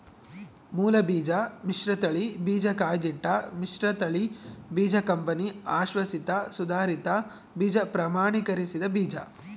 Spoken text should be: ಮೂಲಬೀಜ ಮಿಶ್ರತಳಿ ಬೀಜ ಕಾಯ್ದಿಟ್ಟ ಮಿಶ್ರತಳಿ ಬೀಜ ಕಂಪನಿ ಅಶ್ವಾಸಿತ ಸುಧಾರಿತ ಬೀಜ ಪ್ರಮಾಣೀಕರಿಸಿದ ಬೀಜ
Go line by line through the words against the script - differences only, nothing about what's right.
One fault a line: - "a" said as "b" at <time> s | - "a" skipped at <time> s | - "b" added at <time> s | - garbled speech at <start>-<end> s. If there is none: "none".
none